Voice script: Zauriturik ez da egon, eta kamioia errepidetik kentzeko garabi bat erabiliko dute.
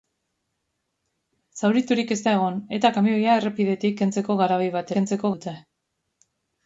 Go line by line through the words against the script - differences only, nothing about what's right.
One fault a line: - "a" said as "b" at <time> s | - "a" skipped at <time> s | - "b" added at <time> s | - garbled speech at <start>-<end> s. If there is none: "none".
- "erabiliko" said as "kentzeko" at 4.9 s